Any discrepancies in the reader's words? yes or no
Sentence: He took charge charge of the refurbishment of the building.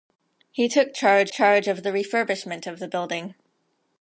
no